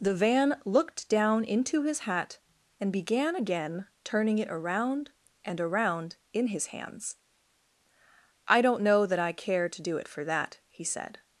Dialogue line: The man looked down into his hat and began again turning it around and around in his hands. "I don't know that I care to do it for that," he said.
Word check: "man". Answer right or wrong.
wrong